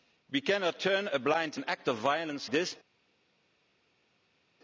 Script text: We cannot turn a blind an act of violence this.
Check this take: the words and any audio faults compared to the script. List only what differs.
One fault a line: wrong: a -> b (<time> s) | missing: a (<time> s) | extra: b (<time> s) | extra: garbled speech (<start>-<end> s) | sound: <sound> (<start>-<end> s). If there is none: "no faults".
no faults